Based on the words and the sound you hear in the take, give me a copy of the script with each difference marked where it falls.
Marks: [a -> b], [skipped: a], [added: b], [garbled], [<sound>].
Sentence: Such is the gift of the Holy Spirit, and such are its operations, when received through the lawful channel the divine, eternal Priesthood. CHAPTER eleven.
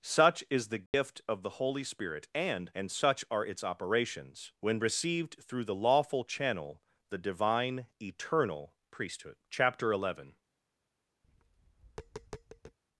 Such is the gift [dropout] of the Holy Spirit, and [added: and] such are its operations, when received through the lawful channel the divine, eternal Priesthood. CHAPTER eleven. [tap]